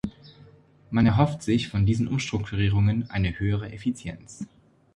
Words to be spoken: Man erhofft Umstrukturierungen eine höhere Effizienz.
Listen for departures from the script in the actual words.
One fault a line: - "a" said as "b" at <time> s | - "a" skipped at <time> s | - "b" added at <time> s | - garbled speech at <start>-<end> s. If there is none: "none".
- "sich von diesen" added at 1.4 s